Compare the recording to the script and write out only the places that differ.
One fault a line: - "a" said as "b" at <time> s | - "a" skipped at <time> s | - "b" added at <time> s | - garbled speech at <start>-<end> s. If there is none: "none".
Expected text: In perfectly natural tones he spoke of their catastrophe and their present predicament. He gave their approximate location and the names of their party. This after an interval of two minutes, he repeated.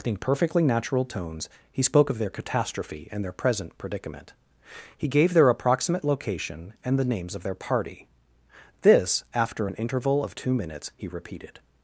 none